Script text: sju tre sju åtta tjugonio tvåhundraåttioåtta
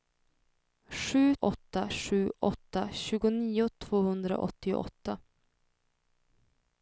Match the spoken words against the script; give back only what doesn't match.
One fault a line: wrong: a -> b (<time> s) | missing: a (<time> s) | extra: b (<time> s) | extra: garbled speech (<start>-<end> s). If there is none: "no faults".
wrong: tre -> åtta (1.4 s)